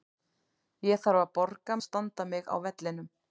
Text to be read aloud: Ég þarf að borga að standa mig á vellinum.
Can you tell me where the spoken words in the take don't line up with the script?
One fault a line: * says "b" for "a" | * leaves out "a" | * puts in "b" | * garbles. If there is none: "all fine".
all fine